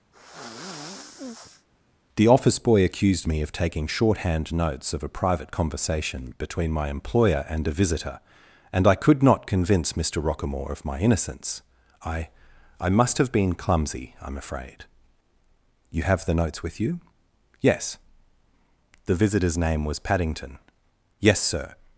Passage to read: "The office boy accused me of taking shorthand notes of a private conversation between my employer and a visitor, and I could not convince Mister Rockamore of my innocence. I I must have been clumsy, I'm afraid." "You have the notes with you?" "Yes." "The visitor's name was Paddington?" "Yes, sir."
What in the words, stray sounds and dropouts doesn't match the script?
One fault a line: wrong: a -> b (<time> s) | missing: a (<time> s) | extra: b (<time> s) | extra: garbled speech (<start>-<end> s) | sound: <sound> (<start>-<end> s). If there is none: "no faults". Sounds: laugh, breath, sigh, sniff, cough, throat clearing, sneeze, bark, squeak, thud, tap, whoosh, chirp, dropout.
sound: sigh (0.1-1.7 s)